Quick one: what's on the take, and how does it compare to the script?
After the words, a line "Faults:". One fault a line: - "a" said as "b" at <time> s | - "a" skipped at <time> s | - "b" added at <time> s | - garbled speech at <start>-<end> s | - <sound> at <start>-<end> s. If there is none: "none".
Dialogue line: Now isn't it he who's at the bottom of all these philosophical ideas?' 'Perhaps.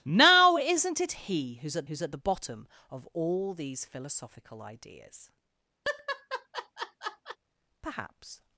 Now isn't it he who's at who's at the bottom of all these philosophical ideas?' 'Perhaps.
Faults:
- "who's at" added at 1.9 s
- laugh at 5.8-7.4 s